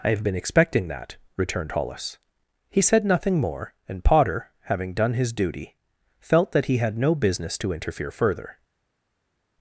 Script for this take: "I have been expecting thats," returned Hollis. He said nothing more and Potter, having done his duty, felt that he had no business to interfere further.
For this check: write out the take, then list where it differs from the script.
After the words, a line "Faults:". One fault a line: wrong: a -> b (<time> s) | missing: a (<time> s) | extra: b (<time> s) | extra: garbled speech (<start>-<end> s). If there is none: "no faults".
"I have been expecting that," returned Hollis. He said nothing more and Potter, having done his duty, felt that he had no business to interfere further.
Faults:
wrong: thats -> that (0.9 s)